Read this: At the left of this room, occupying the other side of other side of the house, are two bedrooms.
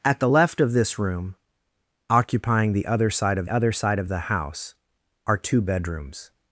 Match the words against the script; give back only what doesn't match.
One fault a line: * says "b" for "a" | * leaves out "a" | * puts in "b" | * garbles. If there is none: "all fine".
all fine